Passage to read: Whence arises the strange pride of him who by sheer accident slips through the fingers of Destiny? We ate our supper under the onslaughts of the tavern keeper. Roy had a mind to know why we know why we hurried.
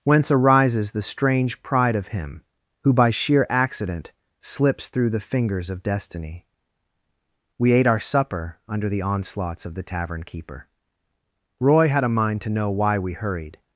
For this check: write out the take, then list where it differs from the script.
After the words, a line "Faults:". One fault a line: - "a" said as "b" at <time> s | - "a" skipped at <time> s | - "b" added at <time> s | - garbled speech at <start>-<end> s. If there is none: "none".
Whence arises the strange pride of him who by sheer accident slips through the fingers of Destiny? We ate our supper under the onslaughts of the tavern keeper. Roy had a mind to know why we hurried.
Faults:
- "know why we" skipped at 13.1 s